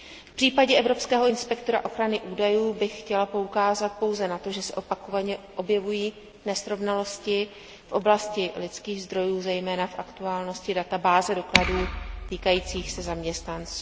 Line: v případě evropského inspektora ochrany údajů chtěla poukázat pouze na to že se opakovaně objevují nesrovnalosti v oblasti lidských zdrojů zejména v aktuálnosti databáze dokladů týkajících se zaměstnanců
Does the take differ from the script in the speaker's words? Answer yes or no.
yes